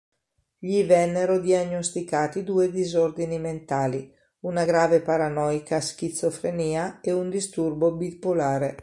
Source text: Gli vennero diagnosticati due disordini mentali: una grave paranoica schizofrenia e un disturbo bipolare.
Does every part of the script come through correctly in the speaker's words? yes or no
yes